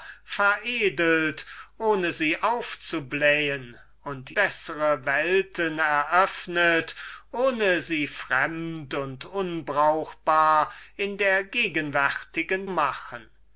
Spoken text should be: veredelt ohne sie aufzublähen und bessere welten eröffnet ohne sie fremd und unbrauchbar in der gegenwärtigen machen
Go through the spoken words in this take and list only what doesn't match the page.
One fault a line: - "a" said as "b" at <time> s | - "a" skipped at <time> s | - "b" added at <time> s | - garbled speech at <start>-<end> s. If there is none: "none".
none